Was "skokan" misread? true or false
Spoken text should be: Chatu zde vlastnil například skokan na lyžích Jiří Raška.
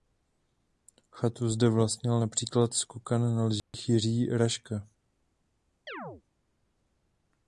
false